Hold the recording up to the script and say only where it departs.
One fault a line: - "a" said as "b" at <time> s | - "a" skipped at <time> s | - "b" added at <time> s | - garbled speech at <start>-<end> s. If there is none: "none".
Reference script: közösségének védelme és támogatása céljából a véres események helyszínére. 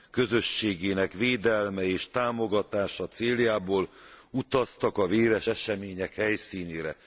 - "utaztak" added at 4.3 s